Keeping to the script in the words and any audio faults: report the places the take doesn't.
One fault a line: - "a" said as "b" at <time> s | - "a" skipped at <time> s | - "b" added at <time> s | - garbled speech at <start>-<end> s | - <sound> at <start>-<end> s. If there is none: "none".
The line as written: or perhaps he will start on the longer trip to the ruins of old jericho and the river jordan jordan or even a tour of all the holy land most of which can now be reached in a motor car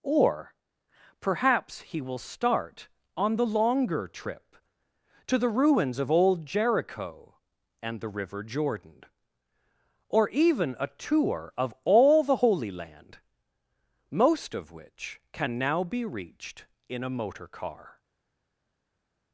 - "jordan" skipped at 9.0 s